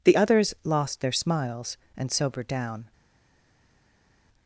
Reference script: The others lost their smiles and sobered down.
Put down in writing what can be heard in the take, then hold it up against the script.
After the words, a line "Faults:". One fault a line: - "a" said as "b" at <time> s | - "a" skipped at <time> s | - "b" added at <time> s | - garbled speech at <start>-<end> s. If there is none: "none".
The others lost their smiles and sobered down.
Faults:
none